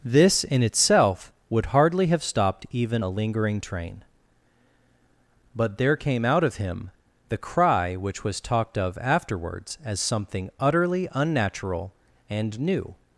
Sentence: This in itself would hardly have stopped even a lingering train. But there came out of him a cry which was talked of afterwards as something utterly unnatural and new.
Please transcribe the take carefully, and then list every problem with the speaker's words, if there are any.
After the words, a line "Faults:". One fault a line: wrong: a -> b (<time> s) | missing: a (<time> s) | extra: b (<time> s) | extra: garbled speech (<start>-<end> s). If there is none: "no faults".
This in itself would hardly have stopped even a lingering train. But there came out of him the cry which was talked of afterwards as something utterly unnatural and new.
Faults:
wrong: a -> the (7.3 s)